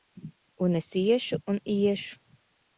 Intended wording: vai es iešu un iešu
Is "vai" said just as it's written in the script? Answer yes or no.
no